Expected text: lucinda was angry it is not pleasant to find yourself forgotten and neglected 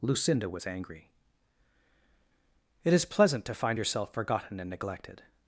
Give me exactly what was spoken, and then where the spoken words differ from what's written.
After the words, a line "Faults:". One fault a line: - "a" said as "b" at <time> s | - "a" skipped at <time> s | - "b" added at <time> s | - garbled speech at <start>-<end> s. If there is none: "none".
lucinda was angry it is pleasant to find yourself forgotten and neglected
Faults:
- "not" skipped at 3.0 s